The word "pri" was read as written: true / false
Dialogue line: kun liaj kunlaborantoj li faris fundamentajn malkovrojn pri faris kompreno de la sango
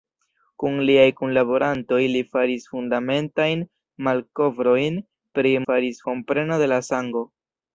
true